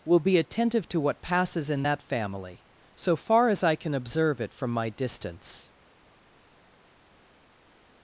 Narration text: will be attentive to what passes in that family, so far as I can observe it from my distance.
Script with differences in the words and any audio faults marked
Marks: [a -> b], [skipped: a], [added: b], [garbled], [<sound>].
will be attentive to what passes in that family, so far as I can observe it from my distance.